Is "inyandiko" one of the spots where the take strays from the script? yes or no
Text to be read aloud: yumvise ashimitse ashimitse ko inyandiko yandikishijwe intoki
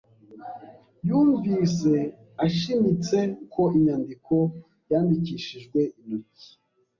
no